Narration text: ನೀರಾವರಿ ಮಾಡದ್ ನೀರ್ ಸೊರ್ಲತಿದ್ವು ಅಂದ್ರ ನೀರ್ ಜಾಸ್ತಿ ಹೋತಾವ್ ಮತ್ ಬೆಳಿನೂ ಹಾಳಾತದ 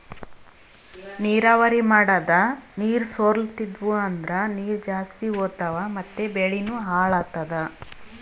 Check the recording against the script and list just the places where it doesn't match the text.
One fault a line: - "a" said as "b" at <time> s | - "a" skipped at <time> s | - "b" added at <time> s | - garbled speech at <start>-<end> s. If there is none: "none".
none